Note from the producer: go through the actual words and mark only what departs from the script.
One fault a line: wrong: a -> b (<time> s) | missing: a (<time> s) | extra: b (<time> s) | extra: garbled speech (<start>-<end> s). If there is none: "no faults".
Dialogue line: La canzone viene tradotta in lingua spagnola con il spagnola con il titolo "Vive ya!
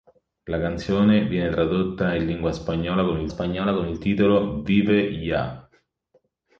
no faults